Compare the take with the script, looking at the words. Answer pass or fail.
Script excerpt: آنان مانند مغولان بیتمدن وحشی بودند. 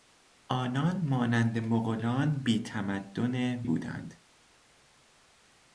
fail